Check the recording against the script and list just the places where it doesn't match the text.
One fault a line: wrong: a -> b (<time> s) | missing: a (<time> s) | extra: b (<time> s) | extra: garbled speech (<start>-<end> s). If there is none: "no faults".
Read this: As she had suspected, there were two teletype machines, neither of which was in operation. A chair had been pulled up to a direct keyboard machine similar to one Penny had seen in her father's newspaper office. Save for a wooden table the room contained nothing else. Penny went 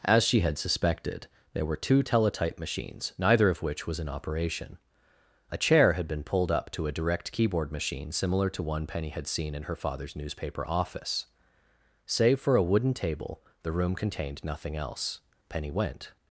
no faults